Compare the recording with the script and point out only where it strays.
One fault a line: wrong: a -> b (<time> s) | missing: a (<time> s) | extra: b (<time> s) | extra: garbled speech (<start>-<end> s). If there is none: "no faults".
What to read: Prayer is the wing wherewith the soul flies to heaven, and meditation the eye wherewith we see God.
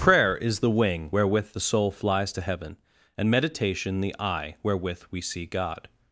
no faults